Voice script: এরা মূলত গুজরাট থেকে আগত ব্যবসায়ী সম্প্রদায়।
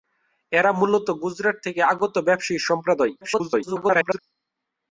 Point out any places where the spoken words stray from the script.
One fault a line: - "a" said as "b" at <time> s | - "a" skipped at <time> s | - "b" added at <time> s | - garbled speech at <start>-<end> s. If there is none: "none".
- garbled speech at 3.2-4.2 s